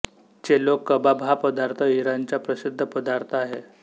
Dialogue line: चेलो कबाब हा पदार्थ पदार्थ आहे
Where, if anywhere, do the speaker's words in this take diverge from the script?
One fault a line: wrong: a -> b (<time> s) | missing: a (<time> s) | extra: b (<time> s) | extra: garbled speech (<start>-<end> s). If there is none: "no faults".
extra: इराणचा प्रसिद्ध (1.9 s)